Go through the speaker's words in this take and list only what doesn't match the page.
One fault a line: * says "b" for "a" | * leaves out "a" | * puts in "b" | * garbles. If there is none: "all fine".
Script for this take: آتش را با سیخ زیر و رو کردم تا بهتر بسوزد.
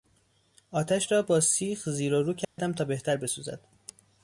all fine